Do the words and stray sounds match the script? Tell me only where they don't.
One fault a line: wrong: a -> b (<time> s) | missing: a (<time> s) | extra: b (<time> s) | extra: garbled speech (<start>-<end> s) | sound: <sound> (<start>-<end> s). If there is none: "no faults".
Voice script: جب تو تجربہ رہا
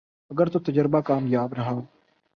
wrong: جب -> اگر (0.3 s)
extra: کامیاب (1.0 s)